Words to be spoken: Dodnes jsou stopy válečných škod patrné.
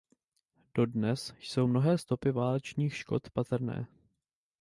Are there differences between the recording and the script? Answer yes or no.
yes